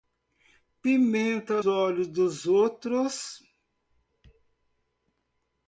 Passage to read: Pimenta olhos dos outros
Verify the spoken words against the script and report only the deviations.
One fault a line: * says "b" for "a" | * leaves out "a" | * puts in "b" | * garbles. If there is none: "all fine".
all fine